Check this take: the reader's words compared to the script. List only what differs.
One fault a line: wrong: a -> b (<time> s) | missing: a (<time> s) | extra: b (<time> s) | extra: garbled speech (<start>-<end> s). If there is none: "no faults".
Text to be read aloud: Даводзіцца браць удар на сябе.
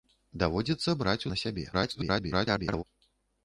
missing: удар (1.3 s)
extra: garbled speech (1.7-2.8 s)